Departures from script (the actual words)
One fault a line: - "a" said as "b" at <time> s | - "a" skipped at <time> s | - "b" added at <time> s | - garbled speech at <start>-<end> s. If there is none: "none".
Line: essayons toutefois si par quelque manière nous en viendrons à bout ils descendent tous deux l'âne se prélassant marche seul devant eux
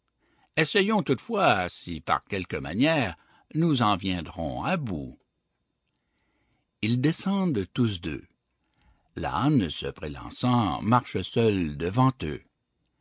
none